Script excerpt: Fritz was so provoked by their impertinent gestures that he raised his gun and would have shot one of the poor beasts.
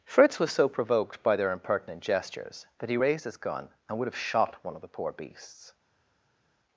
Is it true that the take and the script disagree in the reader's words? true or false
false